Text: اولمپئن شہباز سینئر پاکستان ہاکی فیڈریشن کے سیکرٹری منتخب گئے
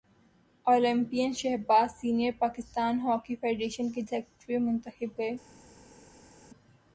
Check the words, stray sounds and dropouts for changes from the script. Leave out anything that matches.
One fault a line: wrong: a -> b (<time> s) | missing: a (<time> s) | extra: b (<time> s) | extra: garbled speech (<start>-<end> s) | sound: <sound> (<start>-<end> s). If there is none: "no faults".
no faults